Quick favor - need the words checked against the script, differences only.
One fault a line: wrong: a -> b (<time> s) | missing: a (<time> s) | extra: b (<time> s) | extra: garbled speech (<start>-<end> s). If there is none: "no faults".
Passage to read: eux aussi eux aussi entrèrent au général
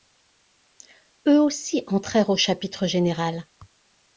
missing: eux aussi (1.8 s)
extra: chapitre (2.4 s)